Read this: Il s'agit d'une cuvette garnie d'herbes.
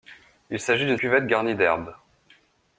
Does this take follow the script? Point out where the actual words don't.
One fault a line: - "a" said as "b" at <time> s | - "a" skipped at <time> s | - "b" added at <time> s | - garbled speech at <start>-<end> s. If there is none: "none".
none